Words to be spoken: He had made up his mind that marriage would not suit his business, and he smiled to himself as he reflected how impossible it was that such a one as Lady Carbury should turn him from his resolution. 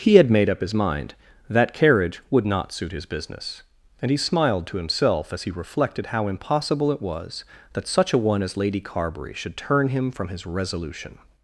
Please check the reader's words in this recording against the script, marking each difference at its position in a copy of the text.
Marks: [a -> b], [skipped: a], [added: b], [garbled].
He had made up his mind that [marriage -> carriage] would not suit his business, and he smiled to himself as he reflected how impossible it was that such a one as Lady Carbury should turn him from his resolution.